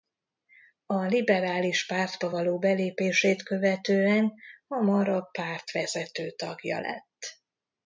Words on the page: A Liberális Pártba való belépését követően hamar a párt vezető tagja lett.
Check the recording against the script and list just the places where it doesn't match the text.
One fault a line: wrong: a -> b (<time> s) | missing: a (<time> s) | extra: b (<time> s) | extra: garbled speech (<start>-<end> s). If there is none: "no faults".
no faults